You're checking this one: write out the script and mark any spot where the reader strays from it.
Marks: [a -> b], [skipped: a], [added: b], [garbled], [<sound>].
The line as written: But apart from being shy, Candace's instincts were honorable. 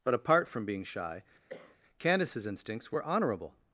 But apart from being shy, [cough] Candace's instincts were honorable.